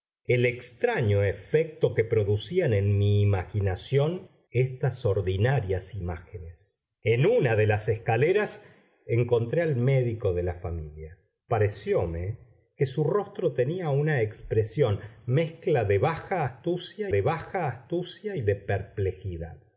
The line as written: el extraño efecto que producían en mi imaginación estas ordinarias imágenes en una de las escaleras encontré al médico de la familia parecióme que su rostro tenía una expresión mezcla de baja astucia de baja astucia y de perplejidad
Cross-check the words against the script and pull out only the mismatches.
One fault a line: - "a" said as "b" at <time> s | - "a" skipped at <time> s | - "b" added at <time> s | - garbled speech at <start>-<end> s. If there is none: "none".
none